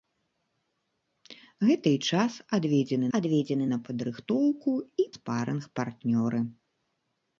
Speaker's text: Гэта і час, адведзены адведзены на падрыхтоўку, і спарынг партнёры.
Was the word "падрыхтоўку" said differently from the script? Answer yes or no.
no